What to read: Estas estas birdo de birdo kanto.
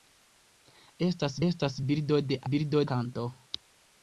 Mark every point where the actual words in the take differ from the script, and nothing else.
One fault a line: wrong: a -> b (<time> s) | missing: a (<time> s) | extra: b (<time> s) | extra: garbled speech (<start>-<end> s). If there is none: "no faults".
no faults